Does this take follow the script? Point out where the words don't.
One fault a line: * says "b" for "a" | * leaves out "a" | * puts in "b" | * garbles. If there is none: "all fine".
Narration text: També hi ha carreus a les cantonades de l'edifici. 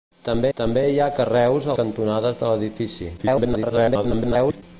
* puts in "també"
* leaves out "les"
* garbles